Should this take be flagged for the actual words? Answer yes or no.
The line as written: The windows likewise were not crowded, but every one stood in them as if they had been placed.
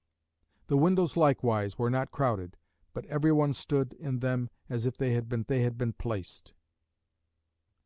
yes